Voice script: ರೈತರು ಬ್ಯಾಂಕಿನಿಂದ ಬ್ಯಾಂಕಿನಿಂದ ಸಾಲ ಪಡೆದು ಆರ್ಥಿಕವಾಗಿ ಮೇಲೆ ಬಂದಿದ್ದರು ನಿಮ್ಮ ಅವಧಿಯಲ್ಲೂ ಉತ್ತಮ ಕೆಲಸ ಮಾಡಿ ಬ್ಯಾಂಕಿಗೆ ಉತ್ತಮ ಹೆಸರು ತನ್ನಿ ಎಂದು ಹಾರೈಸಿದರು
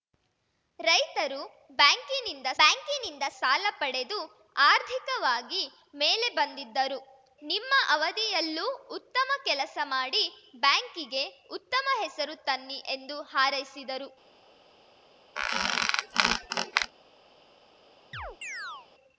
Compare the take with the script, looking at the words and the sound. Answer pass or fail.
fail